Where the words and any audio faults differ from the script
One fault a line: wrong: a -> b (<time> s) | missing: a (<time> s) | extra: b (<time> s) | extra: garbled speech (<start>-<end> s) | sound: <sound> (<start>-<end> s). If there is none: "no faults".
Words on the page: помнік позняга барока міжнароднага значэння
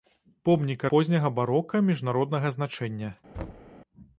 sound: thud (3.3-3.7 s)